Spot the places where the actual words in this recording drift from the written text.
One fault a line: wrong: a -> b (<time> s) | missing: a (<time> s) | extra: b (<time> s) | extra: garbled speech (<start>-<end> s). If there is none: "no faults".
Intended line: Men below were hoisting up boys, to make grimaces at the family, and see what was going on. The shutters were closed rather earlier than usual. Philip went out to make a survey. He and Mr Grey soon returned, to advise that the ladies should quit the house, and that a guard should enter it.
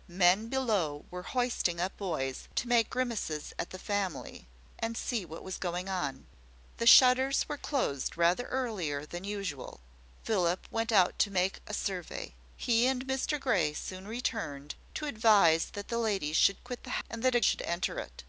missing: house (17.0 s)
missing: guard (17.4 s)